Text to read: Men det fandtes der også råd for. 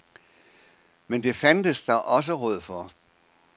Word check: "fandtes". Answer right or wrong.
right